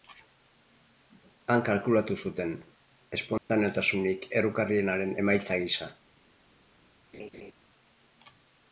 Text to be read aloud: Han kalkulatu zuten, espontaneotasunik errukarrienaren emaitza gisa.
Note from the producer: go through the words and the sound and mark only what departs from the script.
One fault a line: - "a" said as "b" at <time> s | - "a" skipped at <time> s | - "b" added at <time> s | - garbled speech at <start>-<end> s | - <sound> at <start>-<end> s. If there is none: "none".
- dropout at 3.4-3.5 s
- laugh at 7.1-7.5 s